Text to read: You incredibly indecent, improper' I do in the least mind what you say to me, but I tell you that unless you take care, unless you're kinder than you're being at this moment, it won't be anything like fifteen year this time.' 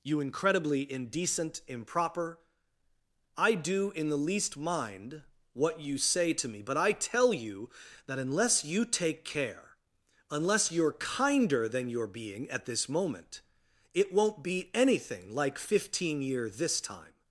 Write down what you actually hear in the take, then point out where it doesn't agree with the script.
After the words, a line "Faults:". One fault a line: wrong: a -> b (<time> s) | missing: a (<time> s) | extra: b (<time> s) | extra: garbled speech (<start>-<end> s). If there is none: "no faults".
You incredibly indecent, improper' I do in the least mind what you say to me, but I tell you that unless you take care, unless you're kinder than you're being at this moment, it won't be anything like fifteen year this time.'
Faults:
no faults